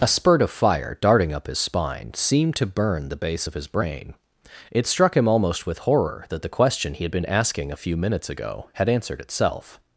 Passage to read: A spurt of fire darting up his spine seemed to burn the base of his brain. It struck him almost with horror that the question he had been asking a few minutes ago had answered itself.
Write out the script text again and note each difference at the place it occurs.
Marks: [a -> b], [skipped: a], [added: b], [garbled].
A spurt of fire darting up his spine seemed to burn the base of his brain. It struck him almost with horror that the question he had been asking a few minutes ago had answered itself.